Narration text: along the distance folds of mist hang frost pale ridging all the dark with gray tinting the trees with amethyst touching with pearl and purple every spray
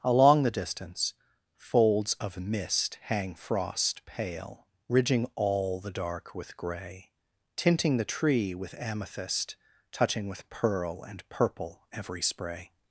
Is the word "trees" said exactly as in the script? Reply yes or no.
no